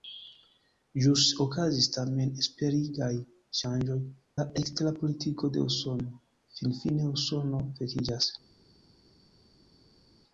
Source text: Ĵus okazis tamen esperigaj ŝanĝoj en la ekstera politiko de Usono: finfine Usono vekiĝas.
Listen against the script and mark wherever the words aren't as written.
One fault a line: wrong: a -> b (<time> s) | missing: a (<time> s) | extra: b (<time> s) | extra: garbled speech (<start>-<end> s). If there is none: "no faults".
missing: en (4.0 s)